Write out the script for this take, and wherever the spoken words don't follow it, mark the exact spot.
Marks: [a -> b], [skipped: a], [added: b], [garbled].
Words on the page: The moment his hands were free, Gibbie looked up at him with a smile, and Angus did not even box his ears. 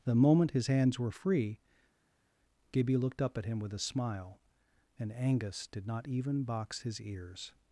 The moment his hands were free, Gibbie looked up at him with a smile, and Angus did not even box his ears.